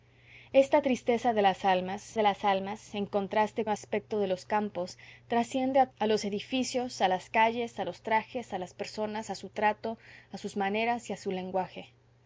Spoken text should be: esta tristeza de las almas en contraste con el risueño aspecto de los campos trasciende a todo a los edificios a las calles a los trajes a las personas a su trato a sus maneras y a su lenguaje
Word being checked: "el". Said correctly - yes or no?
no